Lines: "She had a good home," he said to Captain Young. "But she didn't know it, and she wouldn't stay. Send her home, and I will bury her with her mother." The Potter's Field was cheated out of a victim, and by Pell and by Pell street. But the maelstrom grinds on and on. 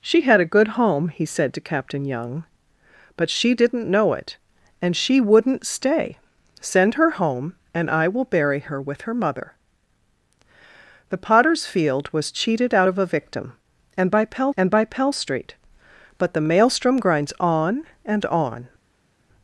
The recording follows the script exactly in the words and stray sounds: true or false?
true